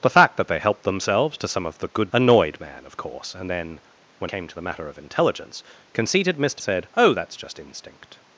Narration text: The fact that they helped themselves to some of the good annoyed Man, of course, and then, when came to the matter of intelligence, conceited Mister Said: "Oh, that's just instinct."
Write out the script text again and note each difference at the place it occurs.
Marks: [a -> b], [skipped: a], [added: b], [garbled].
The fact that they helped themselves to some of the good annoyed Man, of course, and then, when came to the matter of intelligence, conceited Mister Said: "Oh, that's just instinct."